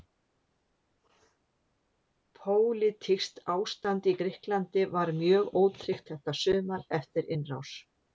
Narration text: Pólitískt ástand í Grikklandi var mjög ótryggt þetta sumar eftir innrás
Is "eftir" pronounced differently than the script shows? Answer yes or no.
no